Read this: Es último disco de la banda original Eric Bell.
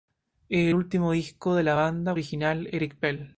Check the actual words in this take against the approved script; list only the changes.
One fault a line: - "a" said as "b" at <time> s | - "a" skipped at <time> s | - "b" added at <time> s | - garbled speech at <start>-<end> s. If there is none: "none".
none